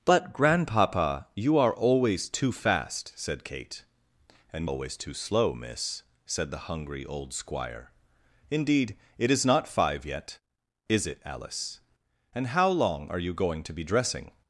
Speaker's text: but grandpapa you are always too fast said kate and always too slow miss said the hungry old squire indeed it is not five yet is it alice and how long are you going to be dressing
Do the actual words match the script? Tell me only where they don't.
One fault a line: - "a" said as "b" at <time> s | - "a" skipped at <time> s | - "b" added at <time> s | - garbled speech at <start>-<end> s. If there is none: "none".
none